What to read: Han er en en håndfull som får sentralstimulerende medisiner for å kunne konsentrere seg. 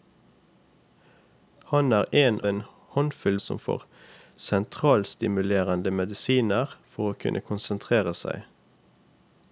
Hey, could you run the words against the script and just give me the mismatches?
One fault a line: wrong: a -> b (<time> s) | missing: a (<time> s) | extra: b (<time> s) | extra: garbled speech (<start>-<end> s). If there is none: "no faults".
no faults